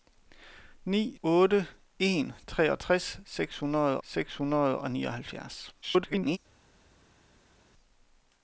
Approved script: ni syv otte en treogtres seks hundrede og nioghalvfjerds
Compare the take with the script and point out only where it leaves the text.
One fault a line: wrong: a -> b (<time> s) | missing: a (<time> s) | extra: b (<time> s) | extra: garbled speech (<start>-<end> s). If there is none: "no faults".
missing: syv (1.1 s)
extra: seks hundrede (4.0 s)
extra: garbled speech (5.8-6.4 s)